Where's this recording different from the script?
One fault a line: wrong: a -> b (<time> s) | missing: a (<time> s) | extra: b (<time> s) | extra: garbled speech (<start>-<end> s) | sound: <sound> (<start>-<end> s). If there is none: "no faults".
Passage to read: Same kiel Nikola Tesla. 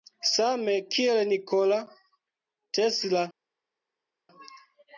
no faults